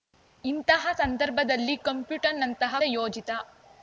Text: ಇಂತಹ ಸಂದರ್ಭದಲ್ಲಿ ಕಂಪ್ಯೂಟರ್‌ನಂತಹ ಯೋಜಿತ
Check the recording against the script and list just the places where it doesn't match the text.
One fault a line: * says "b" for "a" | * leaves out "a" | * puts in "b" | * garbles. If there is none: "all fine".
all fine